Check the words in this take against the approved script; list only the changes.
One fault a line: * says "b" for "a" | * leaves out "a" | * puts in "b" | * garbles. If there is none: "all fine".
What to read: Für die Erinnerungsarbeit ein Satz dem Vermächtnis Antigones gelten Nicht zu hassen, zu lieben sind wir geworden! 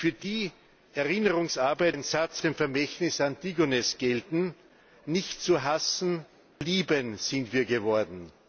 all fine